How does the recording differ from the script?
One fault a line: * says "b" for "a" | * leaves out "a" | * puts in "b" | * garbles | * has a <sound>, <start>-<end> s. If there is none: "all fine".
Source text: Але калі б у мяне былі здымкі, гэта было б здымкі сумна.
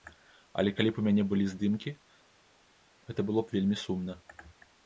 * says "вельмі" for "здымкі"